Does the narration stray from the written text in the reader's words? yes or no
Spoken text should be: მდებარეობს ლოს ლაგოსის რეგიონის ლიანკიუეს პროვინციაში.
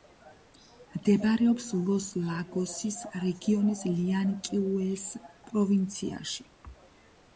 no